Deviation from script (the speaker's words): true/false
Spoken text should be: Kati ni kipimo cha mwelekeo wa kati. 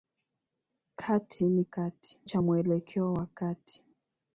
true